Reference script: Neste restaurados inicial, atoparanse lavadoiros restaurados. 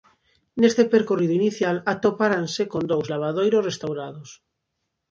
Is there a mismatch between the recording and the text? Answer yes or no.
yes